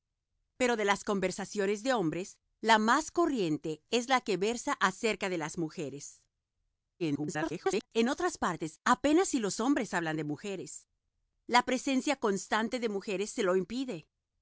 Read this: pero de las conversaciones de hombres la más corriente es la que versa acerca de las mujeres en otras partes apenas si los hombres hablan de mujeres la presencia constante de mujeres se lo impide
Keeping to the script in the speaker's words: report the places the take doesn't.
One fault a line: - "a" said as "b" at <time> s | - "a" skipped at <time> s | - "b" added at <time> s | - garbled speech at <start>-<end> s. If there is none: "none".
- garbled speech at 7.0-7.9 s